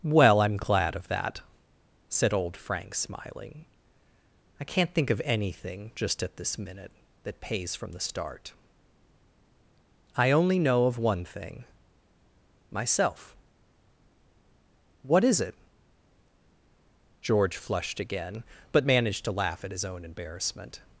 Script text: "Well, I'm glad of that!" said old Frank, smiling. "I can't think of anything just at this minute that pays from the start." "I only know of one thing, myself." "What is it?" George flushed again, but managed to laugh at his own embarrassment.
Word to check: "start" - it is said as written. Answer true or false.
true